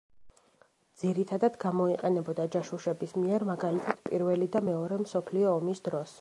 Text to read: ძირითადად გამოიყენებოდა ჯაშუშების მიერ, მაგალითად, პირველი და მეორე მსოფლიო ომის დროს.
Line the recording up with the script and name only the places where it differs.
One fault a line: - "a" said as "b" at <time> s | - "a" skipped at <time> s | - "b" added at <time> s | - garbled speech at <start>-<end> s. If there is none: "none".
none